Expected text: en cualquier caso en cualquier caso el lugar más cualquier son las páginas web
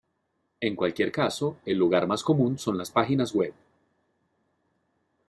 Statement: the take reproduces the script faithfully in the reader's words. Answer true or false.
false